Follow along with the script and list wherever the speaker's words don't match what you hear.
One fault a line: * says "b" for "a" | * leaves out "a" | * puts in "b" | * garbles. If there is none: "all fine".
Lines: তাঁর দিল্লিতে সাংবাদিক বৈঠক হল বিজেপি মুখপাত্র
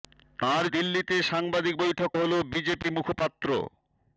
all fine